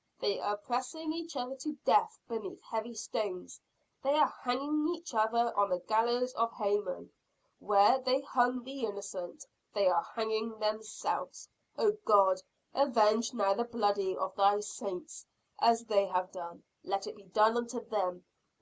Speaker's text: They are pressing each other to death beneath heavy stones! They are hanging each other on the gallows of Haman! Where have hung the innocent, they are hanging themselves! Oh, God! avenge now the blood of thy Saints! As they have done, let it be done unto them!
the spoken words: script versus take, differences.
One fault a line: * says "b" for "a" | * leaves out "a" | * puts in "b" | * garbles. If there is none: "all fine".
* says "they" for "have"